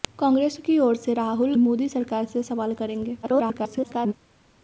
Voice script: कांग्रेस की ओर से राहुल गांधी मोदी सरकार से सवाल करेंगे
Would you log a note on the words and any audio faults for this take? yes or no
yes